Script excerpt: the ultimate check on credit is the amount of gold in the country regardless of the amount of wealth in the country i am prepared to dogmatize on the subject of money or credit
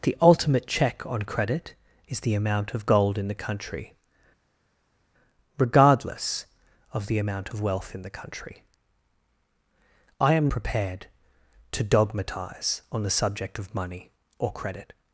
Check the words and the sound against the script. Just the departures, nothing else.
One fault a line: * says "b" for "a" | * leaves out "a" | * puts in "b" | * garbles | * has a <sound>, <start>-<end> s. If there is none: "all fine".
all fine